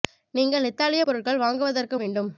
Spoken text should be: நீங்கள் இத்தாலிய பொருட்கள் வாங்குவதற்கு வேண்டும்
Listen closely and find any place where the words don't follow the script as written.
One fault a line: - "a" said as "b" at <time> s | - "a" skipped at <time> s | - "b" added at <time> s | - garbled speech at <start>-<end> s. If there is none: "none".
none